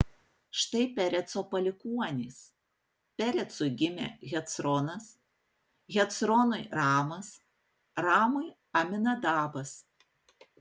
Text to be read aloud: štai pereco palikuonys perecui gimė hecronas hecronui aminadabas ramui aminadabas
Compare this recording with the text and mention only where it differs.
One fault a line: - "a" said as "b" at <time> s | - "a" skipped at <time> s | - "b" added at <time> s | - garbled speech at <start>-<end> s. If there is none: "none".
- "aminadabas" said as "ramas" at 6.8 s